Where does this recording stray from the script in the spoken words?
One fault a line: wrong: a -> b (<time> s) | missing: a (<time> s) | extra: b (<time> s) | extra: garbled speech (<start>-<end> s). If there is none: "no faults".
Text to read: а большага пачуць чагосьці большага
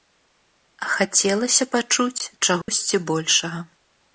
wrong: большага -> хацелася (0.9 s)